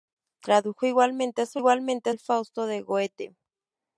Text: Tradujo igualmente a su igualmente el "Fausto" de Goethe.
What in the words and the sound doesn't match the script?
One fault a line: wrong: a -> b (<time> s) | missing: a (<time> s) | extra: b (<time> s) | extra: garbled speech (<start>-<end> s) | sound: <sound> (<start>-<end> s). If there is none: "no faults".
no faults